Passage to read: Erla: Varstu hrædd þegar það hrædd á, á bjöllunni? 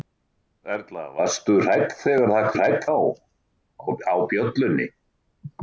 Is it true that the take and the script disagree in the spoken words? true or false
false